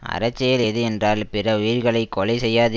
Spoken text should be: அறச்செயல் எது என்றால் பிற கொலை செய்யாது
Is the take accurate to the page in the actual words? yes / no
no